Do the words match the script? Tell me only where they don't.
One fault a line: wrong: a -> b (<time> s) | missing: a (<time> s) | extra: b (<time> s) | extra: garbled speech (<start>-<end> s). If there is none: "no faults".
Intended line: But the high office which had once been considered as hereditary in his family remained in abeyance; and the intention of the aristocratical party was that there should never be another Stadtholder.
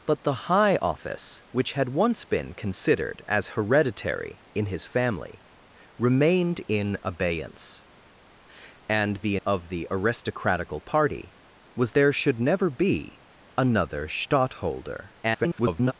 missing: intention (9.4 s)
missing: that (11.9 s)
extra: garbled speech (15.2-15.9 s)